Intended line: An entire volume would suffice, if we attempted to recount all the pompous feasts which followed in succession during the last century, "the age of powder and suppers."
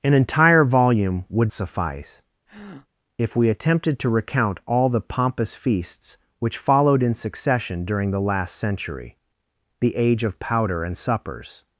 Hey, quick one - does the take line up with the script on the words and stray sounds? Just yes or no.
no